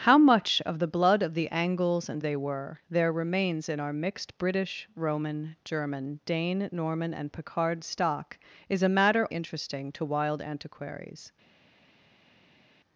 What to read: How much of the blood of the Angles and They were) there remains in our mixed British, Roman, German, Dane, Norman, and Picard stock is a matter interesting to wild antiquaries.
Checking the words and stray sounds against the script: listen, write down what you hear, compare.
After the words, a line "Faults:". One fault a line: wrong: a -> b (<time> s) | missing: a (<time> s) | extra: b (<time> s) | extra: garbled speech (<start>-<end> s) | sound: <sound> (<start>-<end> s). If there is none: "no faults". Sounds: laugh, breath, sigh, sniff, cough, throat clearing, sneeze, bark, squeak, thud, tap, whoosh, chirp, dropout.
How much of the blood of the Angles and They were) there remains in our mixed British, Roman, German, Dane, Norman, and Picard stock is a matter interesting to wild antiquaries.
Faults:
no faults